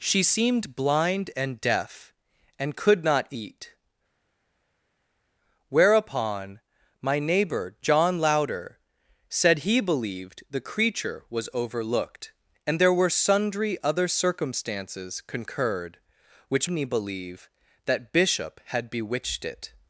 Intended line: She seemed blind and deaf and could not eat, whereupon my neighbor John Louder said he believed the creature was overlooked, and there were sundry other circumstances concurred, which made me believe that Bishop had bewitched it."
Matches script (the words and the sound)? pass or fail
fail